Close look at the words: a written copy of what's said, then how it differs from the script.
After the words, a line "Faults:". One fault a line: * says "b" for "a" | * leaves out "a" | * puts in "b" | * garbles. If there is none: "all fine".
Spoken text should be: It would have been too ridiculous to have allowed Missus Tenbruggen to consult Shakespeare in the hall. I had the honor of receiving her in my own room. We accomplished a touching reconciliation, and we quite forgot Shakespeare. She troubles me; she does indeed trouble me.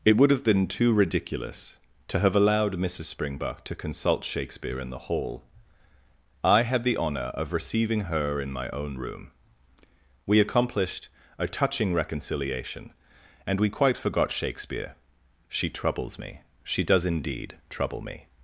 It would have been too ridiculous to have allowed Missus Springbuck to consult Shakespeare in the hall. I had the honor of receiving her in my own room. We accomplished a touching reconciliation, and we quite forgot Shakespeare. She troubles me; she does indeed trouble me.
Faults:
* says "Springbuck" for "Tenbruggen"